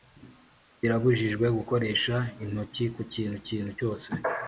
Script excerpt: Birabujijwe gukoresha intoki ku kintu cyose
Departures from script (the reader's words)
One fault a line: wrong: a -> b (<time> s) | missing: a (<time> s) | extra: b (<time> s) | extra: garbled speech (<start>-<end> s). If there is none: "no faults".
extra: kintu (3.5 s)